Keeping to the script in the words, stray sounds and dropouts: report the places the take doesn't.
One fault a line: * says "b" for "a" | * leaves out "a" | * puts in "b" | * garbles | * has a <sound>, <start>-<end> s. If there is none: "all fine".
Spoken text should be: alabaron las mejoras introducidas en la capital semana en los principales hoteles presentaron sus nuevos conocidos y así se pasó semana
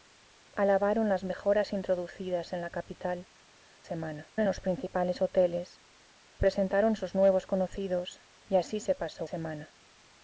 all fine